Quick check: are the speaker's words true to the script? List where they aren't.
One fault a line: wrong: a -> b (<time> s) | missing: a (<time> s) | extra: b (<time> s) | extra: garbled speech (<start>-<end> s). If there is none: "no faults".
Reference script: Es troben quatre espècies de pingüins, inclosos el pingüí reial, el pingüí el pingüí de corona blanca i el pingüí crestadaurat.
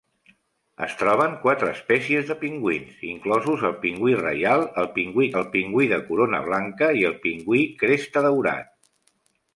no faults